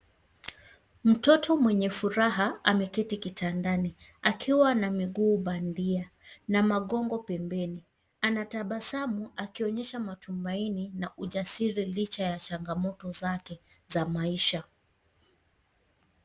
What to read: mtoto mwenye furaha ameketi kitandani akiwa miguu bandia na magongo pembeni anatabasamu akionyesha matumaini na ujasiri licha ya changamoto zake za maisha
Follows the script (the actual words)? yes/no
no